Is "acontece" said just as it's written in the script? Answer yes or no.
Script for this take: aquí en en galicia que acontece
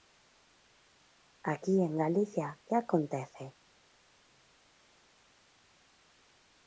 yes